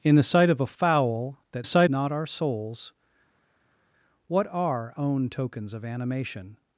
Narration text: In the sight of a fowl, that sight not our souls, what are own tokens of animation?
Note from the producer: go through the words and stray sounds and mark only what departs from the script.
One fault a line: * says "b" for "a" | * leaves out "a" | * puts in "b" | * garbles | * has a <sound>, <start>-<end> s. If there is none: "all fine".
all fine